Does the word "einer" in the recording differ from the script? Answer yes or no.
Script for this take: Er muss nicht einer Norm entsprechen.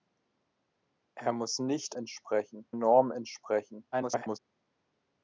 yes